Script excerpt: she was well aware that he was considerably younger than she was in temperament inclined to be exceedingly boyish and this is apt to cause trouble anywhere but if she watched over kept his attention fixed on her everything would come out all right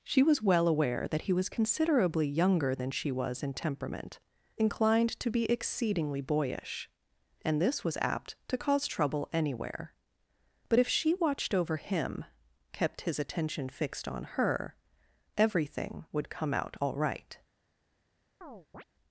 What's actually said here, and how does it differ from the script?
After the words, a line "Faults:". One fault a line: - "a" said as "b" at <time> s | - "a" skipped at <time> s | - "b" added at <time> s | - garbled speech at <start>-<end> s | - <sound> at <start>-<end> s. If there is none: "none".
she was well aware that he was considerably younger than she was in temperament inclined to be exceedingly boyish and this was apt to cause trouble anywhere but if she watched over him kept his attention fixed on her everything would come out all right
Faults:
- "is" said as "was" at 7.8 s
- "him" added at 11.8 s
- chirp at 18.4-18.8 s